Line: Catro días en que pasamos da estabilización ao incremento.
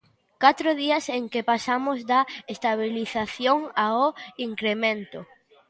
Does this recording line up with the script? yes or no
yes